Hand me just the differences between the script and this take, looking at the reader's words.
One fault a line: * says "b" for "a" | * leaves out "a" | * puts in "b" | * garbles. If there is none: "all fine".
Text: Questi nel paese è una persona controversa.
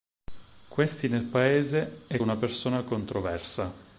all fine